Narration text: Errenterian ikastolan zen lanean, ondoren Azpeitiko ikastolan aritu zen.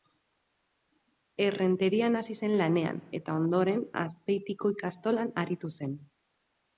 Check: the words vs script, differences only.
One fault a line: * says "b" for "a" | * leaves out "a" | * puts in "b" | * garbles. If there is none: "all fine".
* says "hasi" for "ikastolan"
* puts in "eta"